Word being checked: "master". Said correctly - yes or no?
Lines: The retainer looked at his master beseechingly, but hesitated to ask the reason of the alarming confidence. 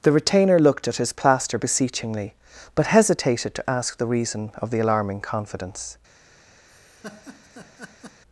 no